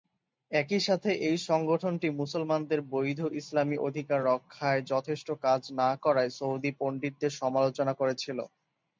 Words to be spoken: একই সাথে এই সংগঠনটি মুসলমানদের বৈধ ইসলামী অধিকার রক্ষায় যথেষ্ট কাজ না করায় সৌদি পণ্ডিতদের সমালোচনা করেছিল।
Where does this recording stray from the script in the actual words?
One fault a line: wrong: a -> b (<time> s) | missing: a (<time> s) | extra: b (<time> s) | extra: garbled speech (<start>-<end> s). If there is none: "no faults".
no faults